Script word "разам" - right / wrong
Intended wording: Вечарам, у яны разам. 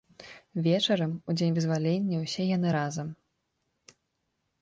right